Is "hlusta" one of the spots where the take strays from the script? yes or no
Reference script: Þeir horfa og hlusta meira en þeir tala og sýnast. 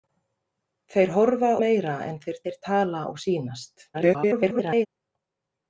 yes